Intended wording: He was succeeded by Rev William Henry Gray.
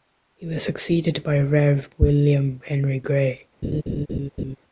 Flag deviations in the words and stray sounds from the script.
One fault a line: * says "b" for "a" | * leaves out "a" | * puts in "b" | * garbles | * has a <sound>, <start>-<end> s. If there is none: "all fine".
* has a laugh, 3.6-4.6 s